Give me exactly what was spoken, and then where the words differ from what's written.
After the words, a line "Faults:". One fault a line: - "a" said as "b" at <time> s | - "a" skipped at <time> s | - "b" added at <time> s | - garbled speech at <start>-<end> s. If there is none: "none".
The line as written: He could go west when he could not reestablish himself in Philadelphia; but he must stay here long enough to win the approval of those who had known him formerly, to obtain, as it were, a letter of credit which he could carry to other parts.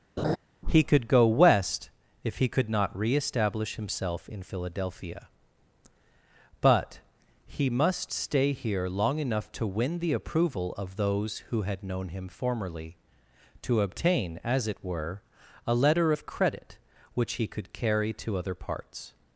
He could go west if he could not reestablish himself in Philadelphia; but he must stay here long enough to win the approval of those who had known him formerly, to obtain, as it were, a letter of credit which he could carry to other parts.
Faults:
- "when" said as "if" at 2.2 s